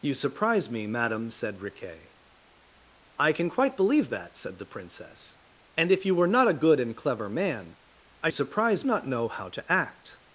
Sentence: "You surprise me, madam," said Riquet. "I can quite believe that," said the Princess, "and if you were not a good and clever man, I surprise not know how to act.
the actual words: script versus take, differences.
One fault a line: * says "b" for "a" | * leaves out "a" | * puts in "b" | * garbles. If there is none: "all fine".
all fine